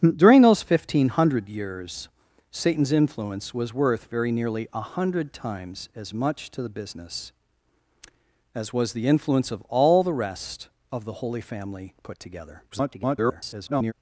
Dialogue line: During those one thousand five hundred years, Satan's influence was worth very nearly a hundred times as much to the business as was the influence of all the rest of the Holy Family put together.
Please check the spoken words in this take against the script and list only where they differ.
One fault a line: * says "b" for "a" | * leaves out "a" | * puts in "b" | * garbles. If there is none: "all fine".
* garbles